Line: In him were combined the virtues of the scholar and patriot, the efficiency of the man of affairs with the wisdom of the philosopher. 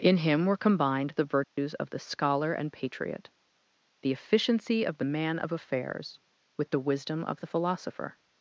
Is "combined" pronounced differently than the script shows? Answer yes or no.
no